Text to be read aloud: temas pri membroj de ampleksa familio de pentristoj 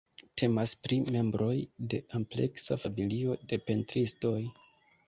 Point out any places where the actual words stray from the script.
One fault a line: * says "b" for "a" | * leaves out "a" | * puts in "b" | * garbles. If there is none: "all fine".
all fine